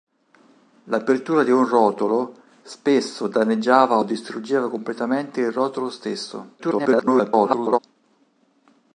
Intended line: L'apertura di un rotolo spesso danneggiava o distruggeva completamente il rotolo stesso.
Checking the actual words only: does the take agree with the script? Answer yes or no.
no